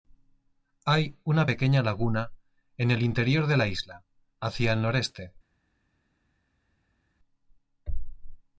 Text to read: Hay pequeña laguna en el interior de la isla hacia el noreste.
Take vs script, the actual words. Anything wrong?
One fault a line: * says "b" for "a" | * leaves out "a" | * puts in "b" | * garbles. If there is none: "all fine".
* puts in "una"